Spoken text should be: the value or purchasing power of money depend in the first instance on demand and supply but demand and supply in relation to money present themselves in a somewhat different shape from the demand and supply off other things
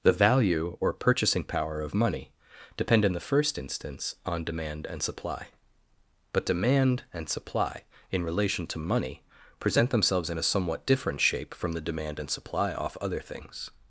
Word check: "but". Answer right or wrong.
right